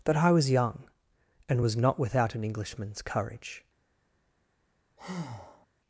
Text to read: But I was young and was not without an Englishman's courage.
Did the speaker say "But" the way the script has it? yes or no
no